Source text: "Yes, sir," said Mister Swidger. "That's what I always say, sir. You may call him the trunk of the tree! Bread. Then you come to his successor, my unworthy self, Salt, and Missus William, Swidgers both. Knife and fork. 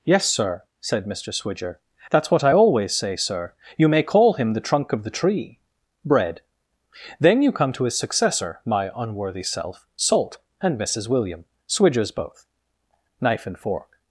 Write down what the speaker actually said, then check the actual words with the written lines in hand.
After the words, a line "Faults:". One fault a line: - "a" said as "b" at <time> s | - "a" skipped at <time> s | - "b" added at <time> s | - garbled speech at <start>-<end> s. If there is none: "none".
"Yes, sir," said Mister Swidger. "That's what I always say, sir. You may call him the trunk of the tree! Bread. Then you come to his successor, my unworthy self, Salt, and Missus William, Swidgers both. Knife and fork.
Faults:
none